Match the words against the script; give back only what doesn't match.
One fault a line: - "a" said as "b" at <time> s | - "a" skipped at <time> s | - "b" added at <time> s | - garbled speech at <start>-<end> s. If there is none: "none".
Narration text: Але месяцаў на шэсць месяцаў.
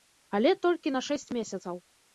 - "месяцаў" said as "толькі" at 0.7 s